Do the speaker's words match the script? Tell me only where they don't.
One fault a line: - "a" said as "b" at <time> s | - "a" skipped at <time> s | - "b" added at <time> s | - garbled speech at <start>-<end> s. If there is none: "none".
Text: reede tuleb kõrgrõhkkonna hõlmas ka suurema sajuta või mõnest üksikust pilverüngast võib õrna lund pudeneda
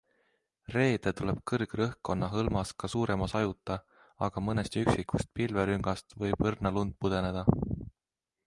- "või" said as "aga" at 4.3 s